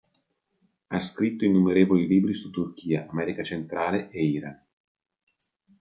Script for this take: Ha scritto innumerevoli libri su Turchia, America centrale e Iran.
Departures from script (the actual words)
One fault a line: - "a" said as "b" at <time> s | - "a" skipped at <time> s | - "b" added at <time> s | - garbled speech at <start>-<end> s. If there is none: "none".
none